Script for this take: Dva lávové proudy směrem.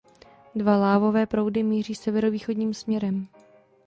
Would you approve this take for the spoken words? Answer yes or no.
no